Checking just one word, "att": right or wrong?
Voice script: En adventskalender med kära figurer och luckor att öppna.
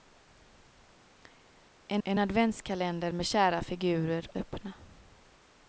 wrong